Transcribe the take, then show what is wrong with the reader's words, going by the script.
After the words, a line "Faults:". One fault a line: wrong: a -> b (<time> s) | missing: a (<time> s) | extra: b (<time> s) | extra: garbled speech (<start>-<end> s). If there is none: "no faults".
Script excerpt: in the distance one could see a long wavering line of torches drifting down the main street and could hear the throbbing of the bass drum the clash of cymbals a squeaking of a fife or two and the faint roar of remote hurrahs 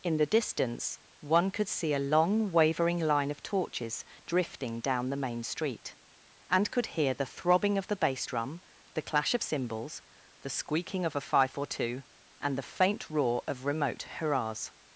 in the distance one could see a long wavering line of torches drifting down the main street and could hear the throbbing of the bass drum the clash of cymbals the squeaking of a fife or two and the faint roar of remote hurrahs
Faults:
wrong: a -> the (10.4 s)